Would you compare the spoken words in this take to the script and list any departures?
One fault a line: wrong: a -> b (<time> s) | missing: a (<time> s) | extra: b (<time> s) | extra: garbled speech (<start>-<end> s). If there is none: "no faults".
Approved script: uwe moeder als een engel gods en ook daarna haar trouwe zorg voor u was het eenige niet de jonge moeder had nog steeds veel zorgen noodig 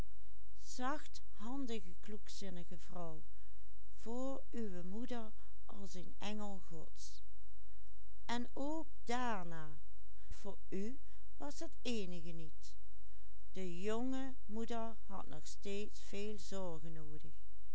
missing: haar trouwe zorg (9.8 s)